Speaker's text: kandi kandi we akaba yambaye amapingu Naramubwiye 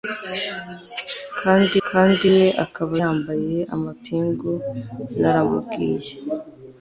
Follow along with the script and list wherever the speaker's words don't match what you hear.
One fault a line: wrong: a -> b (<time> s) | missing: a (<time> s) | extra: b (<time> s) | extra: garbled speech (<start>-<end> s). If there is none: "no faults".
no faults